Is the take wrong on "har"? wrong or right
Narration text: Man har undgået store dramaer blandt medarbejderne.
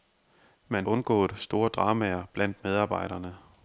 wrong